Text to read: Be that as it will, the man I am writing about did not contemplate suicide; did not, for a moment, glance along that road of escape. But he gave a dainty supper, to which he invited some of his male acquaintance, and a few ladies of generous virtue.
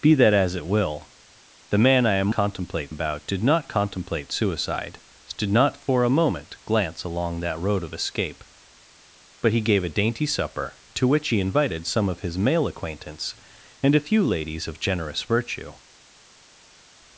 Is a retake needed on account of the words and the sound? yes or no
yes